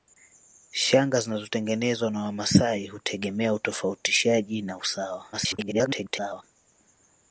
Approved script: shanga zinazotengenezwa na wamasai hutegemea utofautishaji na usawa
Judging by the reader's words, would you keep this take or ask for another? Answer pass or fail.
fail